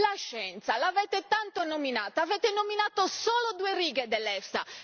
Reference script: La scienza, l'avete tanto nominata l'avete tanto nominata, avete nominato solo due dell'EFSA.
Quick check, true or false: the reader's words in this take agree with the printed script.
false